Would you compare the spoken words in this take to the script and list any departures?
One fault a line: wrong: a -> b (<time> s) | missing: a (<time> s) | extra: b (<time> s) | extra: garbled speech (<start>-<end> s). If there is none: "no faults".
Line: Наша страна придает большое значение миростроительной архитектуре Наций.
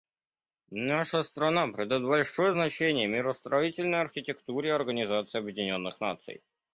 extra: Организации Объединенных (4.7 s)